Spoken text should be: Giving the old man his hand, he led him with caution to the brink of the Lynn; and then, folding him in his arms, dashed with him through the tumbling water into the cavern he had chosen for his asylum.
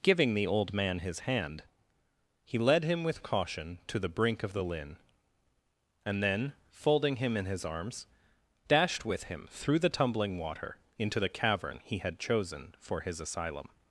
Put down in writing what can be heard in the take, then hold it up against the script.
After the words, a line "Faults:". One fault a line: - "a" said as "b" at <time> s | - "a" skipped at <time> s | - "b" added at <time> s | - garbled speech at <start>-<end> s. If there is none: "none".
Giving the old man his hand, he led him with caution to the brink of the Lynn; and then, folding him in his arms, dashed with him through the tumbling water into the cavern he had chosen for his asylum.
Faults:
none